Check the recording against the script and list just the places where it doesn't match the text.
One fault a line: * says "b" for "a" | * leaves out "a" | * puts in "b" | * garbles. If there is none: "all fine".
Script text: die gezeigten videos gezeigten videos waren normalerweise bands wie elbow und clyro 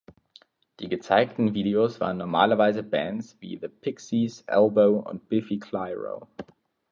* leaves out "gezeigten videos"
* puts in "the pixies"
* puts in "biffy"